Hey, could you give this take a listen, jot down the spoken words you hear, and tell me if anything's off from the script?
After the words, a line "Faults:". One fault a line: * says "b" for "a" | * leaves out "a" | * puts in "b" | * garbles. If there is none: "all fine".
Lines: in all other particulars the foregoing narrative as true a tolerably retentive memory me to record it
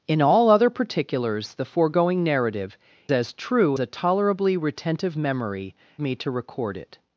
in all other particulars the foregoing narrative as true a tolerably retentive memory me to record it
Faults:
all fine